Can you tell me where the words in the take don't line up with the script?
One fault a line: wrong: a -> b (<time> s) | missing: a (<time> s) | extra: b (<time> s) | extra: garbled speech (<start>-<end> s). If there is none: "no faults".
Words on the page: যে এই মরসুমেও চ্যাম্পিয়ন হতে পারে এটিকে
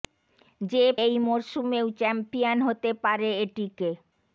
no faults